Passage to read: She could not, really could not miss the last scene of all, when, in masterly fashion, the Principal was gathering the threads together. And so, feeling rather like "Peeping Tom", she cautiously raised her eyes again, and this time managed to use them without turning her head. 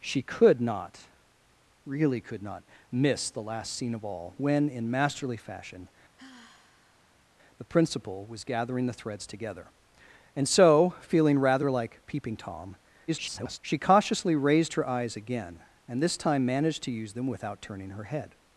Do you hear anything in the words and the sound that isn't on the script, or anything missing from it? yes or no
yes